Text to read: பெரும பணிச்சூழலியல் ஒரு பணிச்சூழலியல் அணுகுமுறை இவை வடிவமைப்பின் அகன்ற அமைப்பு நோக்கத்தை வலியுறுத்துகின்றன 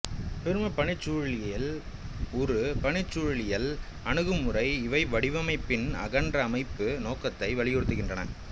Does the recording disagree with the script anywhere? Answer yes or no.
no